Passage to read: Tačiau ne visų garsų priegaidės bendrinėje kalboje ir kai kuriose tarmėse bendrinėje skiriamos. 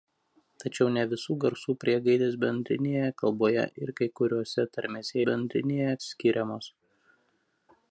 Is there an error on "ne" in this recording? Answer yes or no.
no